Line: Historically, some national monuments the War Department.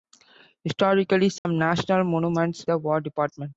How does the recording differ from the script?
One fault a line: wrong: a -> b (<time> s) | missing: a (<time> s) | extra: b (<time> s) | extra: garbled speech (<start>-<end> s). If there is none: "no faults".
no faults